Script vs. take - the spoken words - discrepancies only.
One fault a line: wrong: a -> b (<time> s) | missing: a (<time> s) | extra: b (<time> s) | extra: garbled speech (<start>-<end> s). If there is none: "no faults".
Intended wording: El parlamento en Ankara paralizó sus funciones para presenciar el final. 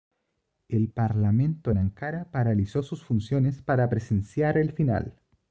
no faults